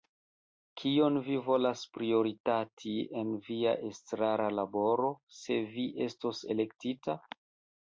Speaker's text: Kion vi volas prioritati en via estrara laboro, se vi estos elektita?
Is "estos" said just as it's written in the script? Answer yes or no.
yes